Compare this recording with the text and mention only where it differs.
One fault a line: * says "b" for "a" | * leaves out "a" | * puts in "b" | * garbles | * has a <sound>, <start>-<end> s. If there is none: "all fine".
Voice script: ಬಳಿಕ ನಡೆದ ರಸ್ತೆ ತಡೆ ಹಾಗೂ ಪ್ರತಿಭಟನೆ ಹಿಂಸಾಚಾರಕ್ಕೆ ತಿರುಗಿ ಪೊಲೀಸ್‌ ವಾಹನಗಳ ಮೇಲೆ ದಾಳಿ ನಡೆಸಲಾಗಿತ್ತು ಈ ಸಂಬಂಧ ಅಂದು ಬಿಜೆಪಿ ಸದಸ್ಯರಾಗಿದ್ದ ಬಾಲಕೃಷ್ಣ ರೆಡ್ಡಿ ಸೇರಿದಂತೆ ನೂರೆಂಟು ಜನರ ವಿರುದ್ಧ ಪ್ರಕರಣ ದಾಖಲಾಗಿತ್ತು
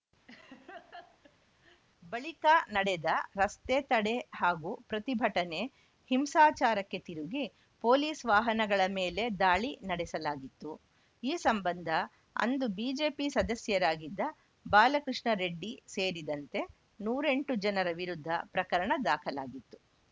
* has a laugh, 0.3-1.8 s